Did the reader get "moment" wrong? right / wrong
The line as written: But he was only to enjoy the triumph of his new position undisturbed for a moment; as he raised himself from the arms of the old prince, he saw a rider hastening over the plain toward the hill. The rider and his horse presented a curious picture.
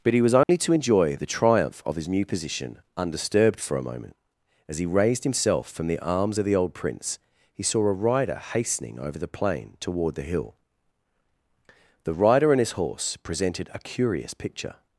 right